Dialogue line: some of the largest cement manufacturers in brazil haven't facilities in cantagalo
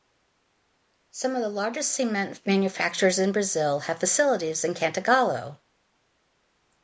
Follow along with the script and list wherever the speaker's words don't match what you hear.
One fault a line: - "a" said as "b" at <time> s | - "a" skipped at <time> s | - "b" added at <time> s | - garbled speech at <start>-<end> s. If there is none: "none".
- "haven't" said as "have" at 3.8 s